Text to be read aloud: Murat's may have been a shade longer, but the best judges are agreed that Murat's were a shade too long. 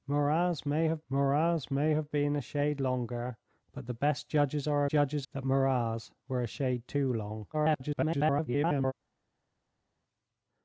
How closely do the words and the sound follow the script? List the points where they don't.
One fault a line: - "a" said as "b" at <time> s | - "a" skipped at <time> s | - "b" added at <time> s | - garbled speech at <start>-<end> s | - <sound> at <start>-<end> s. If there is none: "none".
- "murat's may have" added at 1.1 s
- "agreed" said as "judges" at 4.9 s
- garbled speech at 7.5-8.9 s